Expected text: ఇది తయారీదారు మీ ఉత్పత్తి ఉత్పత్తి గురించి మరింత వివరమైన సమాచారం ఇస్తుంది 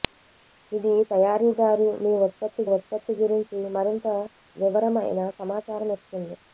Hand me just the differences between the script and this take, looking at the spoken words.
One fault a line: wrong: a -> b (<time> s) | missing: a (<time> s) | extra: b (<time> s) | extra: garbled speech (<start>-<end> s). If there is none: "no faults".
no faults